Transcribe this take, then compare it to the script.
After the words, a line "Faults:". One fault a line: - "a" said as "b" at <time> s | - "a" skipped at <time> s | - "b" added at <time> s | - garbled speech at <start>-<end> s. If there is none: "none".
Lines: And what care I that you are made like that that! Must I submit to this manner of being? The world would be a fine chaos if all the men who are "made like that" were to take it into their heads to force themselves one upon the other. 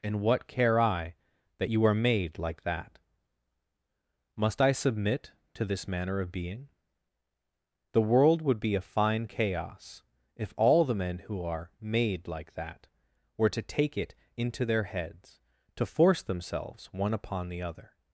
And what care I that you are made like that! Must I submit to this manner of being? The world would be a fine chaos if all the men who are "made like that" were to take it into their heads to force themselves one upon the other.
Faults:
- "that" skipped at 3.0 s